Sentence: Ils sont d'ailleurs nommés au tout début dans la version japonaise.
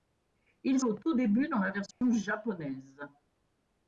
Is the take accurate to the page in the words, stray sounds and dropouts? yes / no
no